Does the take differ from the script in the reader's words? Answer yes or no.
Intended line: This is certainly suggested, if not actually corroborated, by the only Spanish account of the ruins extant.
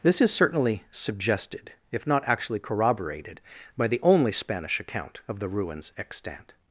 no